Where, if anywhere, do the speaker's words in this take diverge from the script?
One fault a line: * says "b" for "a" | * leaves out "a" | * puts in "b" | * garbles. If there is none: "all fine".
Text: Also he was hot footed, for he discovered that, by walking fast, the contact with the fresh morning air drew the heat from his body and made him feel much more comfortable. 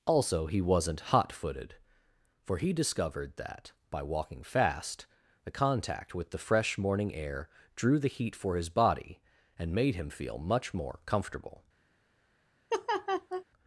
* says "wasn't" for "was"
* says "for" for "from"